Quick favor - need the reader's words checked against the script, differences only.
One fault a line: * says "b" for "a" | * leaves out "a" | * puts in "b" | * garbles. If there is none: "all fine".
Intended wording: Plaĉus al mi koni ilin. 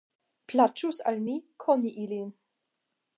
all fine